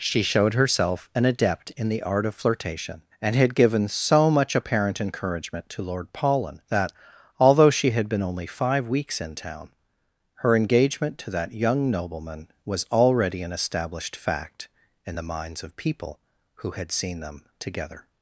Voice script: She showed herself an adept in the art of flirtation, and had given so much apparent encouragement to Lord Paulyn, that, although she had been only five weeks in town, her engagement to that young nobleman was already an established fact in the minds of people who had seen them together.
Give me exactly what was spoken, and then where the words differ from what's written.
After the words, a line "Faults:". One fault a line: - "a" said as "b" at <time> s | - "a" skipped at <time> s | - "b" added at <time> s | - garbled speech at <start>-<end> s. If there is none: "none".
She showed herself an adept in the art of flirtation, and had given so much apparent encouragement to Lord Paulyn, that, although she had been only five weeks in town, her engagement to that young nobleman was already an established fact in the minds of people who had seen them together.
Faults:
none